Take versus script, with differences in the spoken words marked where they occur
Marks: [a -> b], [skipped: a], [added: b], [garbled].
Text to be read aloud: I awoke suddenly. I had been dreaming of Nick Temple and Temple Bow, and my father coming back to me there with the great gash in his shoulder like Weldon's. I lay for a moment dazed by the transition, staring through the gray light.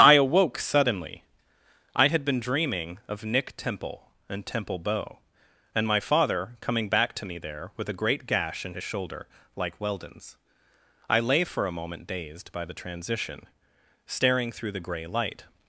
I awoke suddenly. I had been dreaming of Nick Temple and Temple Bow, and my father coming back to me there with [the -> a] great gash in his shoulder like Weldon's. I lay for a moment dazed by the transition, staring through the gray light.